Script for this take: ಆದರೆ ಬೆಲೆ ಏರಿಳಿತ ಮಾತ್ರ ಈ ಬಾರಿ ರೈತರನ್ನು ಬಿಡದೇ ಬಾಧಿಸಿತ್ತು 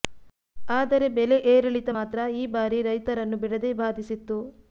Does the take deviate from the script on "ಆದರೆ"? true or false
false